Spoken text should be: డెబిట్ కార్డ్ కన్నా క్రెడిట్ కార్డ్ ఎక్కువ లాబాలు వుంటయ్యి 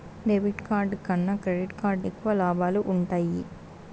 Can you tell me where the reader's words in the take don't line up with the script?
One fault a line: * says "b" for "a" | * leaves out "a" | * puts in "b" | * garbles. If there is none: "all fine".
all fine